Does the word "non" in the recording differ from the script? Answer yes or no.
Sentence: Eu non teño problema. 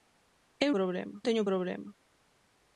yes